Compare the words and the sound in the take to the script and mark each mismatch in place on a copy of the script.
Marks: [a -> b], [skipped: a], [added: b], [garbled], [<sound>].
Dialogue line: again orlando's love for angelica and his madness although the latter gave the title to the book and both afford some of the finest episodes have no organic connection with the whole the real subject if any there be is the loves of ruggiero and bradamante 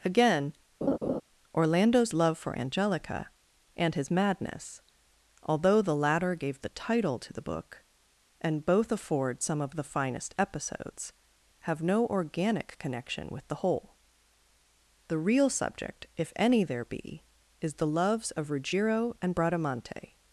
again [laugh] orlando's love for angelica and his madness although the latter gave the title to the book and both afford some of the finest episodes have no organic connection with the whole the real subject if any there be is the loves of ruggiero and bradamante